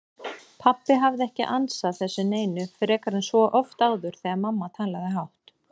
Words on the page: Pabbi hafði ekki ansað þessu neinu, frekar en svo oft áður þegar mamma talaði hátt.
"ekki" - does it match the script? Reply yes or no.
yes